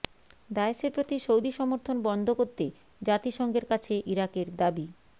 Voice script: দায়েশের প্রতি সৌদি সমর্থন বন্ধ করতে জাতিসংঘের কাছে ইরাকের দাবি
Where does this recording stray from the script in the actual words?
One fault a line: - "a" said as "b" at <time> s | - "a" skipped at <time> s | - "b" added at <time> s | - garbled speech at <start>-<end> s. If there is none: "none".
none